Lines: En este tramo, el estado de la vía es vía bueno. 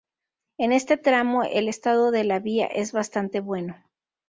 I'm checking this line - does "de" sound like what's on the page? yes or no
yes